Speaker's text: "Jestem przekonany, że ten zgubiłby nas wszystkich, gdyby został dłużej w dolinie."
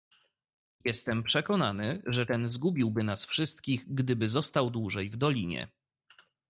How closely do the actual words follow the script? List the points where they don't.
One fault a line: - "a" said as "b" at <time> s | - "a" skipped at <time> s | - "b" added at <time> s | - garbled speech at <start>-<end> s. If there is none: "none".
none